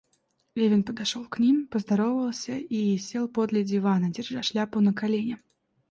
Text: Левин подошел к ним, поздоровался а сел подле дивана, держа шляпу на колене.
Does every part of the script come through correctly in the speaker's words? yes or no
no